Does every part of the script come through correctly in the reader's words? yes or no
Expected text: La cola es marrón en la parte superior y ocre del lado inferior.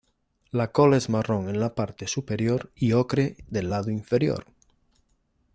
yes